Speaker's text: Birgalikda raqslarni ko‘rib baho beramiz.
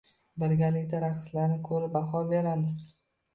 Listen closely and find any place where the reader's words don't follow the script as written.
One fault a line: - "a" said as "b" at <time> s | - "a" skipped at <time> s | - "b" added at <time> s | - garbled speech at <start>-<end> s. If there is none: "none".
none